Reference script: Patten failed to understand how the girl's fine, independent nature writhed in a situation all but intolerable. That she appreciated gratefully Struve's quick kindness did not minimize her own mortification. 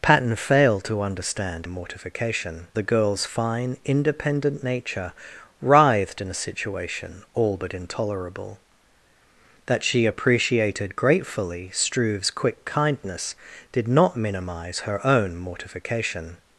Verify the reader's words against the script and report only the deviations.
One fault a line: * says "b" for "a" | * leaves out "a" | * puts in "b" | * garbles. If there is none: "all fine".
* says "mortification" for "how"